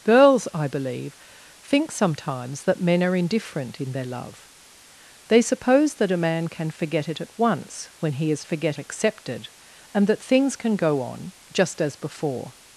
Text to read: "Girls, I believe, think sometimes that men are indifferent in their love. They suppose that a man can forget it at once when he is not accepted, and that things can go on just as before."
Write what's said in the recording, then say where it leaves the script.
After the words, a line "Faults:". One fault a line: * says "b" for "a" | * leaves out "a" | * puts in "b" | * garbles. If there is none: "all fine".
"Girls, I believe, think sometimes that men are indifferent in their love. They suppose that a man can forget it at once when he is forget accepted, and that things can go on just as before."
Faults:
* says "forget" for "not"